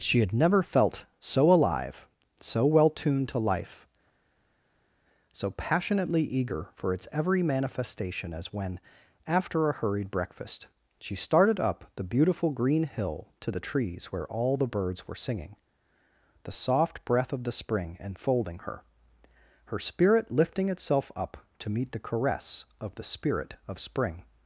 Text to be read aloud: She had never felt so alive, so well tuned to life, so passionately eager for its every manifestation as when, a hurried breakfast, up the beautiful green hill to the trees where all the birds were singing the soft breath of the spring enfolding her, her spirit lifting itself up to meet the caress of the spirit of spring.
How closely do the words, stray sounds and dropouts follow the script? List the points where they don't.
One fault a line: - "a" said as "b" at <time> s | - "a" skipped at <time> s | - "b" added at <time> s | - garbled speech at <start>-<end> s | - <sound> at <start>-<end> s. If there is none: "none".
- "after" added at 9.3 s
- "she started" added at 11.0 s